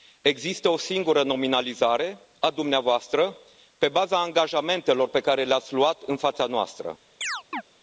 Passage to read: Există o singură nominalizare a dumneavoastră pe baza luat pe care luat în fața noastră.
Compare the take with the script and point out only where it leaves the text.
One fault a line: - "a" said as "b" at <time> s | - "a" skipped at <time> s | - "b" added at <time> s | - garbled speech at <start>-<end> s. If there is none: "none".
- "luat" said as "angajamentelor" at 4.2 s
- "le ați" added at 5.4 s